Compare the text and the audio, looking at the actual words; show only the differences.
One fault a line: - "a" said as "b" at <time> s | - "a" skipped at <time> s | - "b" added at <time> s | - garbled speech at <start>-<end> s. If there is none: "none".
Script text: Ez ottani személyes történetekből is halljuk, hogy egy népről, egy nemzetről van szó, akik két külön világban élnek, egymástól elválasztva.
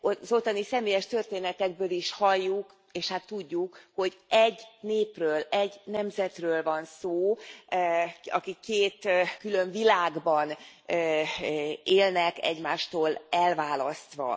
- "Ez" said as "Az" at 0.0 s
- "és hát tudjuk" added at 2.9 s